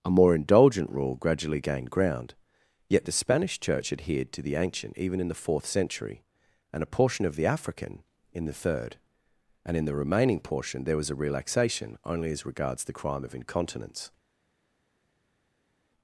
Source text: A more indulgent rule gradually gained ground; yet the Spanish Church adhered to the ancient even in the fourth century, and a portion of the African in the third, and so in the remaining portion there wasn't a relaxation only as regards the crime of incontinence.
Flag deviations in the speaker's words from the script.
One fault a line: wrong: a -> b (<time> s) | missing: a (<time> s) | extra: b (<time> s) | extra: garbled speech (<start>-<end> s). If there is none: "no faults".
missing: so (9.8 s)
wrong: wasn't -> was (11.0 s)